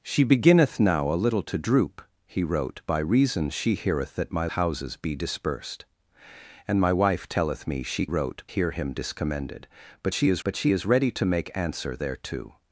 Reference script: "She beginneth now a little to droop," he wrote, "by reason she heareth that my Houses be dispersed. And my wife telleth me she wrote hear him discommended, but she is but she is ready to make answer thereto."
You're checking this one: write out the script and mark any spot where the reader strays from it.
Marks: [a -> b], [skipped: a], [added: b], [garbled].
"She beginneth now a little to droop," he wrote, "by reason she heareth that my Houses be dispersed. And my wife telleth me she wrote hear him discommended, but she is but she is ready to make answer thereto."